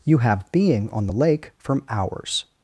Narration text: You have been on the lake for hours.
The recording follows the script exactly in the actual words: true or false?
false